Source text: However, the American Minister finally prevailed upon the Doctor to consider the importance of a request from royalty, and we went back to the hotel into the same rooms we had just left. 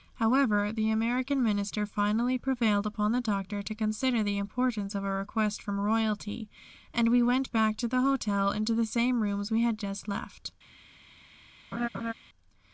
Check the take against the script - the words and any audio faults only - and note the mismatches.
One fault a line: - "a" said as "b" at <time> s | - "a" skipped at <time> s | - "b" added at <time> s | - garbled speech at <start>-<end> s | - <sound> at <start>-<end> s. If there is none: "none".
- laugh at 11.7-12.1 s